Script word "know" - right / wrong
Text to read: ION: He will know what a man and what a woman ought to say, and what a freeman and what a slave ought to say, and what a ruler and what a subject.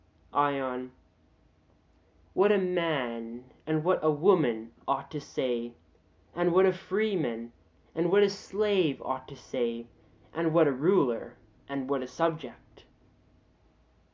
wrong